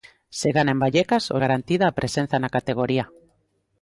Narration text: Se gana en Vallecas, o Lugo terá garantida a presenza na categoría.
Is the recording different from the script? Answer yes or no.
yes